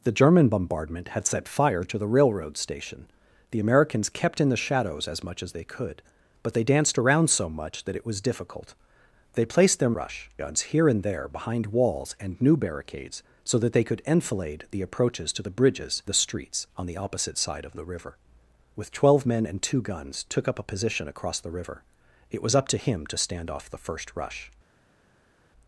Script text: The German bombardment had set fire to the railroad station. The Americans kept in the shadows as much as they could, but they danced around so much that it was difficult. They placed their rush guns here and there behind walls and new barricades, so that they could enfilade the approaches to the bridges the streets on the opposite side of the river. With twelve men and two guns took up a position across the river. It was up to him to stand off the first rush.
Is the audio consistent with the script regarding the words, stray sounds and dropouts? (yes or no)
yes